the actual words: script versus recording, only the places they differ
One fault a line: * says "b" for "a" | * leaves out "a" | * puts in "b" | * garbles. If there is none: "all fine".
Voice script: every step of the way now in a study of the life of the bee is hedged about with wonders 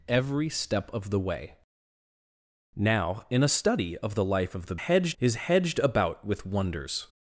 * says "hedged" for "bee"